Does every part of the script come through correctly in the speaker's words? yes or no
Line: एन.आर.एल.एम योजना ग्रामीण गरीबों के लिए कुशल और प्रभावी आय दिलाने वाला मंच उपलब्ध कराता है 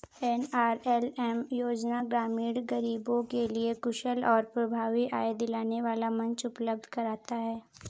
yes